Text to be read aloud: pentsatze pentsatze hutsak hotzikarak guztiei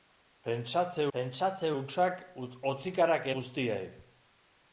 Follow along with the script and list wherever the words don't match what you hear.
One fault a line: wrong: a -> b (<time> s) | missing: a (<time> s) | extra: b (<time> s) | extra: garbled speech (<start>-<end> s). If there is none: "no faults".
no faults